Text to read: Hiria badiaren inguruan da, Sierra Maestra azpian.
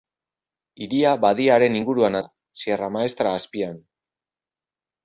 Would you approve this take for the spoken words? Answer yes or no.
yes